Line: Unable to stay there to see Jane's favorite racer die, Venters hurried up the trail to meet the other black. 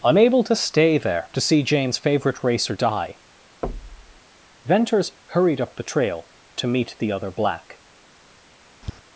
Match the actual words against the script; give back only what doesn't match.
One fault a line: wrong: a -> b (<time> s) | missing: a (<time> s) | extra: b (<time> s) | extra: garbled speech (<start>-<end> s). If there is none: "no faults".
no faults